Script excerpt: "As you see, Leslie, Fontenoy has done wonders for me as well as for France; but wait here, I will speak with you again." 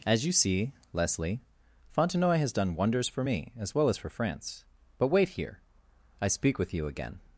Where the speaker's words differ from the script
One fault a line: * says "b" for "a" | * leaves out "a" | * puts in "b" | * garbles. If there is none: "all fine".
* leaves out "will"